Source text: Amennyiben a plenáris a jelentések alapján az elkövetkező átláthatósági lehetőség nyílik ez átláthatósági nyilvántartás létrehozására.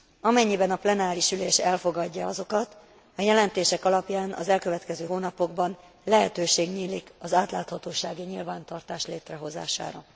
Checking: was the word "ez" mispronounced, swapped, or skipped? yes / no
yes